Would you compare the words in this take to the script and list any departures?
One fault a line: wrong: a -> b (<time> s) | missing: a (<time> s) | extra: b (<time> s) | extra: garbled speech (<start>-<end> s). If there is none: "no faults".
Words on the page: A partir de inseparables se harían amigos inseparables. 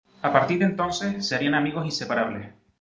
wrong: inseparables -> entonces (0.6 s)